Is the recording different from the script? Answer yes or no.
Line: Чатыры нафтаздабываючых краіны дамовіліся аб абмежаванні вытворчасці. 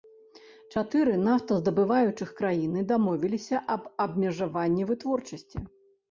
no